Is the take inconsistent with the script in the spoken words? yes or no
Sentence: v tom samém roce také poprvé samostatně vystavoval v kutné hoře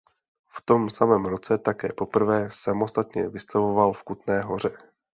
no